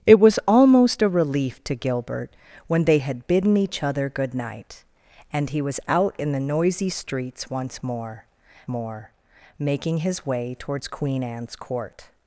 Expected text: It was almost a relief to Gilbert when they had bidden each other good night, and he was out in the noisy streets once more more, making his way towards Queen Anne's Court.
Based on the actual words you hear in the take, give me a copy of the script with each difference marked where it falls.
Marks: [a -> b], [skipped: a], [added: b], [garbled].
It was almost a relief to Gilbert when they had bidden each other good night, and he was out in the noisy streets once more more, making his way towards Queen Anne's Court.